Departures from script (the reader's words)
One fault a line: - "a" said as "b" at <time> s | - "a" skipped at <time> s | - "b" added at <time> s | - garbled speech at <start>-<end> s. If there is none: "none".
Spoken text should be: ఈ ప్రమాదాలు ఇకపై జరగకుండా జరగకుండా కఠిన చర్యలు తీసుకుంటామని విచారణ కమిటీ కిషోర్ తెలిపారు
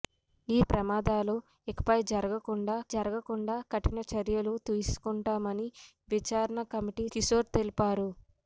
none